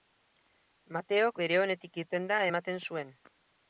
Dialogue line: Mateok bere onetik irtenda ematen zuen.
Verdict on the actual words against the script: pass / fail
pass